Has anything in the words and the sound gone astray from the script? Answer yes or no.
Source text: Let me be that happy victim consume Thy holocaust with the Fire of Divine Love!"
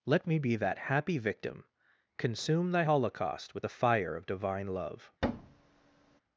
yes